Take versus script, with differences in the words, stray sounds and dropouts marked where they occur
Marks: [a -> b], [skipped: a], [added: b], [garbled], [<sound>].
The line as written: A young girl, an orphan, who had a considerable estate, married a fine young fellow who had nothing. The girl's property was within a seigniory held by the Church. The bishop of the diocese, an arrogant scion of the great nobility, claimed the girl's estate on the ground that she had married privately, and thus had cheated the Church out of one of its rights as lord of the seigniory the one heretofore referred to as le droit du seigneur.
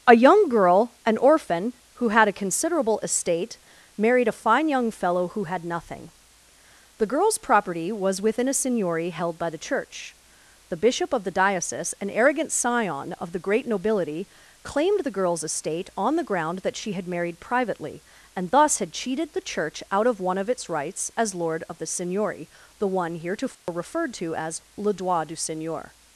A young girl, an orphan, who had a considerable estate, married a fine young fellow who had nothing. The girl's property was within a seigniory held by the Church. The bishop of the diocese, an arrogant scion of the great nobility, claimed the girl's estate on the ground that she had married privately, and thus had cheated the Church out of one of its rights as lord of the seigniory the one heretofore [dropout] referred to as le droit du seigneur.